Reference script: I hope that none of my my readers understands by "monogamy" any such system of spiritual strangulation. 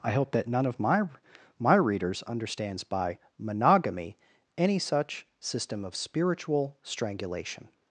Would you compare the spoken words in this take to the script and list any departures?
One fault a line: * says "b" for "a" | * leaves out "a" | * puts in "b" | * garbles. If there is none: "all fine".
all fine